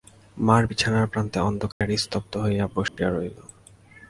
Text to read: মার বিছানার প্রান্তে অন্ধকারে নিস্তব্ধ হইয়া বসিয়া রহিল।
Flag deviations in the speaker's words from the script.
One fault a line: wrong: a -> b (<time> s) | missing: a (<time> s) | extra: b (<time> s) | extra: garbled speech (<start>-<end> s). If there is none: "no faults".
no faults